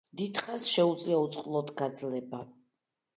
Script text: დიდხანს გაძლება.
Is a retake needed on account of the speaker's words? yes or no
yes